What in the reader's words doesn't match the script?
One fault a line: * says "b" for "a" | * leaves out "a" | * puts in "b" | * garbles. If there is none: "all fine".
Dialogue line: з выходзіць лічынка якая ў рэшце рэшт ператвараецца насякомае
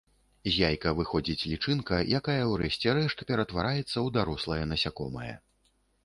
* puts in "яйка"
* puts in "ў дарослае"